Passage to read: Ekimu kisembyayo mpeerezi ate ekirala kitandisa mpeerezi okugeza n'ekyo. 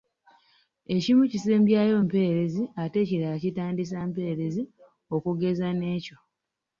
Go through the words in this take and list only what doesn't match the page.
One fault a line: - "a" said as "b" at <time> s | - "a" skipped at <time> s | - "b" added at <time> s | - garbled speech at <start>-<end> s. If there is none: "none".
none